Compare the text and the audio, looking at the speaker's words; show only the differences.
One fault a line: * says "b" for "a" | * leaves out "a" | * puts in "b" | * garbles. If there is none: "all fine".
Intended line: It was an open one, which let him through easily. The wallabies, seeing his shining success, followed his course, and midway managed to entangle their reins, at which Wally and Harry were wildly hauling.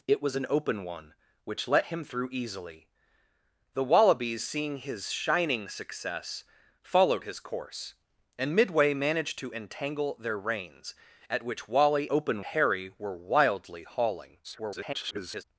* says "open" for "and"
* garbles